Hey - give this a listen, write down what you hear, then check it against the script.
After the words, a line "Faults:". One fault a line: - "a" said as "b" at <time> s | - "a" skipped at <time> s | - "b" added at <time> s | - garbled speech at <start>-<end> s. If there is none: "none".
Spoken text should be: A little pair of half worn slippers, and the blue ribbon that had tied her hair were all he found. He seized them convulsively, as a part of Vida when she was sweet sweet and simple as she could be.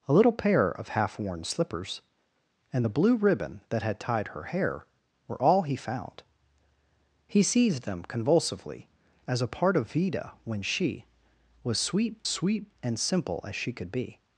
A little pair of half worn slippers, and the blue ribbon that had tied her hair were all he found. He seized them convulsively, as a part of Vida when she was sweet sweet and simple as she could be.
Faults:
none